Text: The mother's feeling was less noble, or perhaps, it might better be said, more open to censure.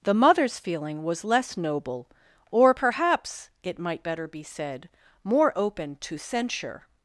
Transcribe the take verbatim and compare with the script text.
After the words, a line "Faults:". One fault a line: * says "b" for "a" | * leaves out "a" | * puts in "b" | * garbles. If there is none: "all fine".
The mother's feeling was less noble, or perhaps, it might better be said, more open to censure.
Faults:
all fine